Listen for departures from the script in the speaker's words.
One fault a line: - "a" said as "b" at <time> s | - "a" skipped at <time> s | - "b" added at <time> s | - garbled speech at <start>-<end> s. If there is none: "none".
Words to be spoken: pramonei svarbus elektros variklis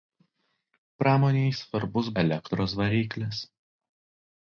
none